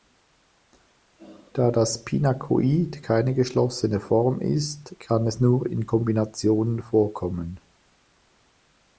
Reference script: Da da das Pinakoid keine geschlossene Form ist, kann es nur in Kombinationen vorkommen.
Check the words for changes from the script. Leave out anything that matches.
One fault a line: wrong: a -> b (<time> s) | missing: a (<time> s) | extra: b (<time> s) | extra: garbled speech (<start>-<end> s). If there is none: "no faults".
missing: da (1.7 s)